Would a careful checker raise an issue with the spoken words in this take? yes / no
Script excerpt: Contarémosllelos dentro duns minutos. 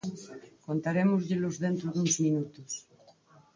no